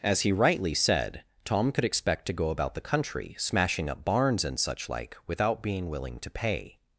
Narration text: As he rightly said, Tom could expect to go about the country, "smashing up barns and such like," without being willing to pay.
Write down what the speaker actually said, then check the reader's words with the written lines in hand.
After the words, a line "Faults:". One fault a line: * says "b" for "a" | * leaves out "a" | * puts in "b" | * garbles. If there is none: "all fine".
As he rightly said, Tom could expect to go about the country, "smashing up barns and such like," without being willing to pay.
Faults:
all fine